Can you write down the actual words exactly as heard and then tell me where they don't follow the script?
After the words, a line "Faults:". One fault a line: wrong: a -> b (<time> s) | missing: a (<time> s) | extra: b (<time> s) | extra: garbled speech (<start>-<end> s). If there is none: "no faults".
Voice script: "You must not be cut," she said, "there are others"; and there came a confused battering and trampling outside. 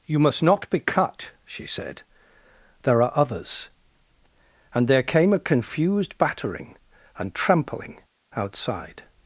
"You must not be cut," she said, "there are others"; and there came a confused battering and trampling outside.
Faults:
no faults